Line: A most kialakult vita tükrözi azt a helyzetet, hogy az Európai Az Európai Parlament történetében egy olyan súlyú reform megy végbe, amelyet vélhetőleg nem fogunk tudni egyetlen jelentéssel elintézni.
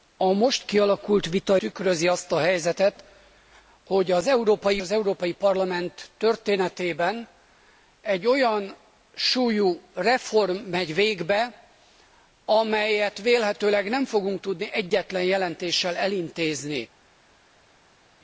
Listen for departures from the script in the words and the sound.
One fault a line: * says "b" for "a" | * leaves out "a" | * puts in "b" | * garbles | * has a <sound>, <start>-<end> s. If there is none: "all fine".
all fine